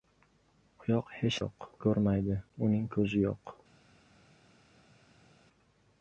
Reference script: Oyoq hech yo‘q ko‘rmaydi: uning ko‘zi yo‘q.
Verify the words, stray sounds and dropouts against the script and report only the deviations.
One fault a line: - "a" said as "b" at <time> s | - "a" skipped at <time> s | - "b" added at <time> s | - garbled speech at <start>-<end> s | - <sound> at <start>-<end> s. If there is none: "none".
none